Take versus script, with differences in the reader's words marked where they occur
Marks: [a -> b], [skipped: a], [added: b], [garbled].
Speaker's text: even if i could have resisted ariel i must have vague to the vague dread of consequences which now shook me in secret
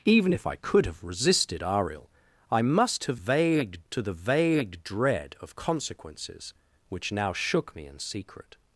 even if i could have resisted ariel i must have vague to the vague dread of consequences which now shook me in secret